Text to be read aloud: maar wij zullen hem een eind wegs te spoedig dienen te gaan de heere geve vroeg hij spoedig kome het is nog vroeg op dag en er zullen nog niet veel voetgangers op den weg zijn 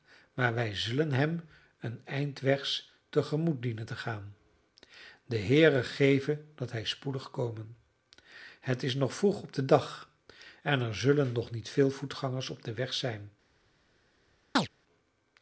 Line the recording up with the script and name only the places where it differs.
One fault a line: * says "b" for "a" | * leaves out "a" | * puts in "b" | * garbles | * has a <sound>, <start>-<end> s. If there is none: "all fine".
* says "gemoet" for "spoedig"
* says "dat" for "vroeg"
* puts in "den"
* has a chirp, 14.6-14.7 s